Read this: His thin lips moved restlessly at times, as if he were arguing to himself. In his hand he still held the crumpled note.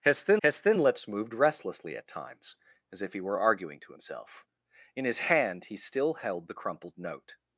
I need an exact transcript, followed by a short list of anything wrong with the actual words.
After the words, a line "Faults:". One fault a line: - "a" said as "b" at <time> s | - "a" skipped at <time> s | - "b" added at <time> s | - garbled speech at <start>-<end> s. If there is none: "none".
His thin his thin lips moved restlessly at times, as if he were arguing to himself. In his hand he still held the crumpled note.
Faults:
- "his thin" added at 0.4 s